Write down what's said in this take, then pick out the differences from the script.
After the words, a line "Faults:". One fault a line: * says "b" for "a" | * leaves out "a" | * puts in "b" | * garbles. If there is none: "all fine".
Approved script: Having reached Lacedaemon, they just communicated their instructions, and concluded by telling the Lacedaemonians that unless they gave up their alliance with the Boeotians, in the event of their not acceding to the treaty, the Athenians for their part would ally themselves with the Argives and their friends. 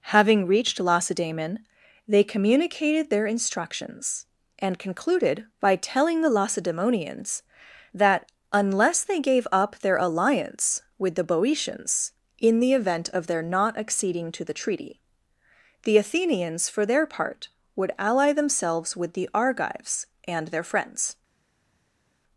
Having reached Lacedaemon, they communicated their instructions, and concluded by telling the Lacedaemonians that unless they gave up their alliance with the Boeotians, in the event of their not acceding to the treaty, the Athenians for their part would ally themselves with the Argives and their friends.
Faults:
* leaves out "just"